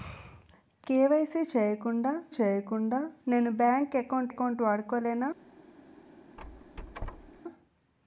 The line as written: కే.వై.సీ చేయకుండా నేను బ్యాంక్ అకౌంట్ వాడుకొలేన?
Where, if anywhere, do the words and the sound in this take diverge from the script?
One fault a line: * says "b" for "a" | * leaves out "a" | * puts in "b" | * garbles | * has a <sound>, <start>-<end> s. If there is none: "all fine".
* puts in "చేయకుండా"
* puts in "అకౌంట్"
* has a squeak, 6.4-7.4 s